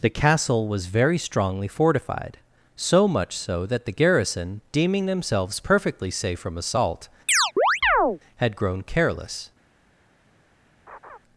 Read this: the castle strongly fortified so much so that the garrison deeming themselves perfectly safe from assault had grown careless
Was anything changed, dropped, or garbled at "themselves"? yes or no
no